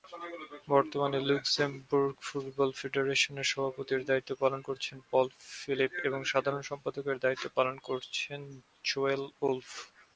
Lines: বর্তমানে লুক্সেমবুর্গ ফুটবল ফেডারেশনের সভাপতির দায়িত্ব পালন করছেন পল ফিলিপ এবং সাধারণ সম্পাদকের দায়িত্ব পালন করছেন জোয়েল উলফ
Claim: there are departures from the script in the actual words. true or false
false